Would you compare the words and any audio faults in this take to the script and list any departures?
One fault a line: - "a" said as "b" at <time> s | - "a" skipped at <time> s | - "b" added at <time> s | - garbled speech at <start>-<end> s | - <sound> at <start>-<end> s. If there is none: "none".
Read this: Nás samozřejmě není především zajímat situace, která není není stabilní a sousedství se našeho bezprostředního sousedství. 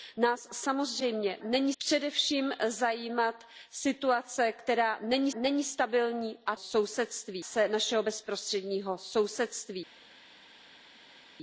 none